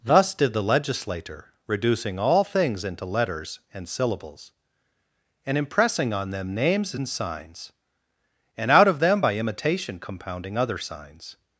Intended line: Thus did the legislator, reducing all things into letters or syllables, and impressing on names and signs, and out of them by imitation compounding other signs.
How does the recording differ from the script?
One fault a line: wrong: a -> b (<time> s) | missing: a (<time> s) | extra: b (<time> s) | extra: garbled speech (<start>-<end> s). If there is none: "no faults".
wrong: or -> and (3.7 s)
extra: them (6.3 s)